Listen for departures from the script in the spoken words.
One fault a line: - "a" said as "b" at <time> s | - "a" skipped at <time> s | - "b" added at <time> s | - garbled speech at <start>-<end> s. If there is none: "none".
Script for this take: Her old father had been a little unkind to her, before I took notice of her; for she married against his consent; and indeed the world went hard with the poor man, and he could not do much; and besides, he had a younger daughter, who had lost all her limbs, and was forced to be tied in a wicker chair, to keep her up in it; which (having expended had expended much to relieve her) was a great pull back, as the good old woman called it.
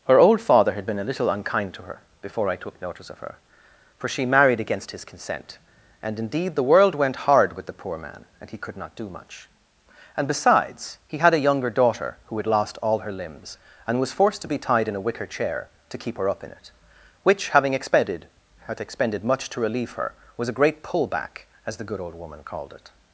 none